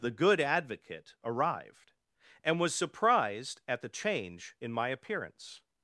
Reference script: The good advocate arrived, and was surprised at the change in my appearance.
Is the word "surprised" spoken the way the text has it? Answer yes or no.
yes